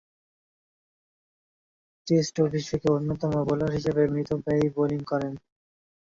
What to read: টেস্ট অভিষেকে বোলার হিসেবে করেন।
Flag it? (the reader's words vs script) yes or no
yes